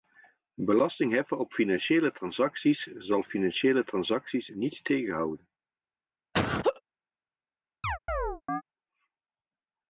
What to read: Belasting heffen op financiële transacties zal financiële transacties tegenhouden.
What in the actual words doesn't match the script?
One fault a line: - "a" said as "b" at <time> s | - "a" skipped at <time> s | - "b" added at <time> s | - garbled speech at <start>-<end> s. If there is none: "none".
- "niet" added at 4.5 s